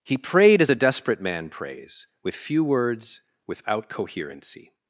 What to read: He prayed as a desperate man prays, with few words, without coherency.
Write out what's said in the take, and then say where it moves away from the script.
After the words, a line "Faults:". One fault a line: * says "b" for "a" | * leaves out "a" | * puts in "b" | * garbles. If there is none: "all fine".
He prayed as a desperate man prays, with few words, without coherency.
Faults:
all fine